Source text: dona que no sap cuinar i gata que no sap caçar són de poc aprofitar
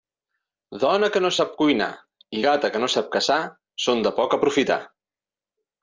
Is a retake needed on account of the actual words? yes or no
no